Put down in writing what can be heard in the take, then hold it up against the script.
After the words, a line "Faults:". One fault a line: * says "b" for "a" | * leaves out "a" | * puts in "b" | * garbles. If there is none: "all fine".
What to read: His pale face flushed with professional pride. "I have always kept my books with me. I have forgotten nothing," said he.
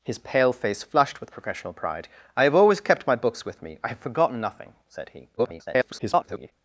His pale face flushed with professional pride. "I have always kept my books with me. I have forgotten nothing," said he. [garbled]
Faults:
* garbles